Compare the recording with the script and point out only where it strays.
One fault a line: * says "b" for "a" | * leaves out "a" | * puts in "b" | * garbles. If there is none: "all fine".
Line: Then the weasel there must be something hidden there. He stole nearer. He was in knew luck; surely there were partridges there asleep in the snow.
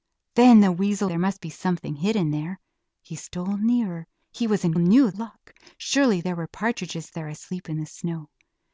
all fine